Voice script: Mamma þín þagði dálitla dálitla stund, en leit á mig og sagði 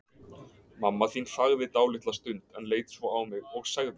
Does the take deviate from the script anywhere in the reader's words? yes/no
yes